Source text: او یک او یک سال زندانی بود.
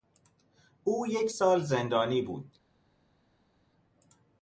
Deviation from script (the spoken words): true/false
true